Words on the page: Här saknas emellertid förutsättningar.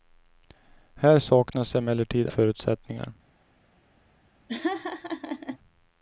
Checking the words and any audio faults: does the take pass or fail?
fail